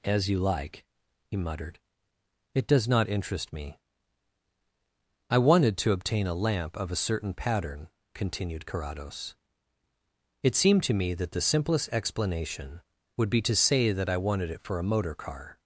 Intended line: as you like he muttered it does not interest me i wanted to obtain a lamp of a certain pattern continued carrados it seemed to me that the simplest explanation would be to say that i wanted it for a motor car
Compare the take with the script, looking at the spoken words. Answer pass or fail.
pass